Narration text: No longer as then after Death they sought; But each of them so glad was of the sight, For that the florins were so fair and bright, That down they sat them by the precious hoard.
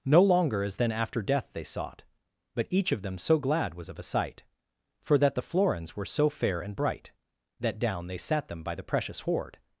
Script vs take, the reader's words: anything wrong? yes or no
yes